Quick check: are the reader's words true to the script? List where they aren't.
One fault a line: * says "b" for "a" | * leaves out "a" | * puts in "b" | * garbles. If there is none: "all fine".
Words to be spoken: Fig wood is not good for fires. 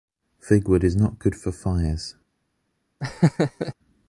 all fine